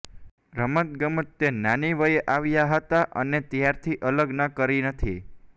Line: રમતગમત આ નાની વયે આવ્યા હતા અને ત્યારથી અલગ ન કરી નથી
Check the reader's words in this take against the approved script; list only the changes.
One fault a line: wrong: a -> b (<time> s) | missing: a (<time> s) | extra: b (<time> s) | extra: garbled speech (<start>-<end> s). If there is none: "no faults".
wrong: આ -> તે (1.4 s)